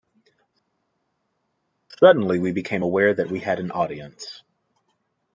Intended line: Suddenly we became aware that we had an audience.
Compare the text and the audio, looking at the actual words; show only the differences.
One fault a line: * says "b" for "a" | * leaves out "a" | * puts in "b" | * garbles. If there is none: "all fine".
all fine